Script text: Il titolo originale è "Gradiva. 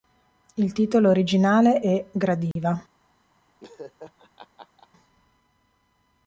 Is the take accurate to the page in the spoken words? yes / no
yes